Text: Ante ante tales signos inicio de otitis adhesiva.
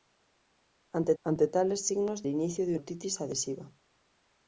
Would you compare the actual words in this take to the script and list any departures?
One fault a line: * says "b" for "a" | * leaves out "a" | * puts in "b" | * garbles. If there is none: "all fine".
all fine